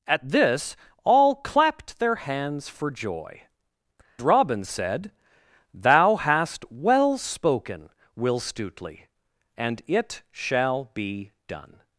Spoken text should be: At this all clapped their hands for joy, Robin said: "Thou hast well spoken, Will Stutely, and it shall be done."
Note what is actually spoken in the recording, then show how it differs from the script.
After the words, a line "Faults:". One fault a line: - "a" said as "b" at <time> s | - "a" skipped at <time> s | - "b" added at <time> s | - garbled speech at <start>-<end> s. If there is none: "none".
At this all clapped their hands for joy, Robin said: "Thou hast well spoken, Will Stutely, and it shall be done."
Faults:
none